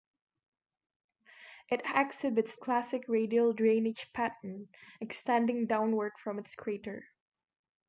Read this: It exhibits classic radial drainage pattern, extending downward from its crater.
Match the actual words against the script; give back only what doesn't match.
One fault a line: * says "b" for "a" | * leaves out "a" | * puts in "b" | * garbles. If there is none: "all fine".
all fine